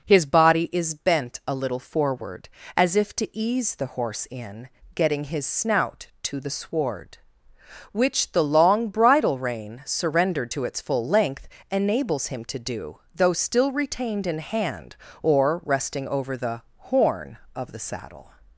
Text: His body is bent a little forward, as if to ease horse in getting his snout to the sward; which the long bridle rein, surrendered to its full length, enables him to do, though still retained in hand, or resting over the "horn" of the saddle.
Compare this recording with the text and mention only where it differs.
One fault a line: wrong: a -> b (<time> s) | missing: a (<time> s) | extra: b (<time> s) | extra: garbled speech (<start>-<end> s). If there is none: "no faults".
extra: the (3.8 s)